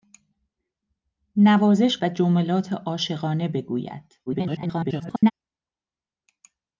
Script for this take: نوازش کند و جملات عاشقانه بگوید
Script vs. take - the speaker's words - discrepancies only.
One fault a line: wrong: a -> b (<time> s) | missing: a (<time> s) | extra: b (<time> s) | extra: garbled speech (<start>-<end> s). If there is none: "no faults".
missing: کند (2.0 s)
extra: garbled speech (4.3-5.3 s)